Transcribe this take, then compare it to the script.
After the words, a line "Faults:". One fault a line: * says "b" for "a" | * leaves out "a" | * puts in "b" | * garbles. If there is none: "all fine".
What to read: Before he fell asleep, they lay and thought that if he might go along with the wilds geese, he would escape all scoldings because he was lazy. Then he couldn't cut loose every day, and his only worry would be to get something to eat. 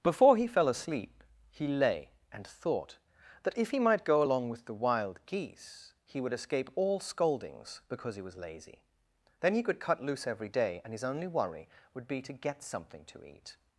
Before he fell asleep, he lay and thought that if he might go along with the wild geese, he would escape all scoldings because he was lazy. Then he could cut loose every day, and his only worry would be to get something to eat.
Faults:
* says "he" for "they"
* says "wild" for "wilds"
* says "could" for "couldn't"